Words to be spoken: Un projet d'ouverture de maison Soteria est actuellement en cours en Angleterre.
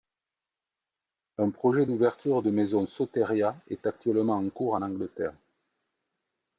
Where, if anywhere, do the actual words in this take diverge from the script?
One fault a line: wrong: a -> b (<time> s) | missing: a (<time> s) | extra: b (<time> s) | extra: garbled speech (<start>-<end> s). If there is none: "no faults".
no faults